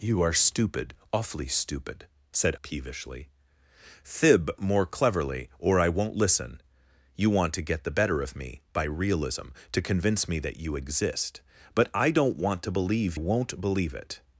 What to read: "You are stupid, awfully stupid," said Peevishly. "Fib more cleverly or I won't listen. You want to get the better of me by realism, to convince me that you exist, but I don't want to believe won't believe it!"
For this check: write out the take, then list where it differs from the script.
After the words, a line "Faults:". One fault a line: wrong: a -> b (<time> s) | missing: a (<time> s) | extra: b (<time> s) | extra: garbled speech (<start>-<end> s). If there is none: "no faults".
"You are stupid, awfully stupid," said Peevishly. "Fib more cleverly or I won't listen. You want to get the better of me by realism, to convince me that you exist, but I don't want to believe won't believe it!"
Faults:
no faults